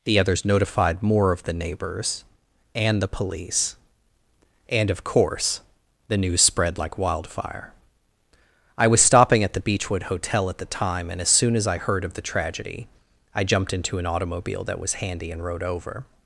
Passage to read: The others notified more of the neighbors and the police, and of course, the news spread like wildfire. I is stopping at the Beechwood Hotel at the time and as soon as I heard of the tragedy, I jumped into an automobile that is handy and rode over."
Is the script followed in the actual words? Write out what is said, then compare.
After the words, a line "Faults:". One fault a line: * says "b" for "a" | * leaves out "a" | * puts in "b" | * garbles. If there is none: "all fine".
The others notified more of the neighbors and the police, and of course, the news spread like wildfire. I was stopping at the Beechwood Hotel at the time and as soon as I heard of the tragedy, I jumped into an automobile that was handy and rode over."
Faults:
* says "was" for "is"
* says "was" for "is"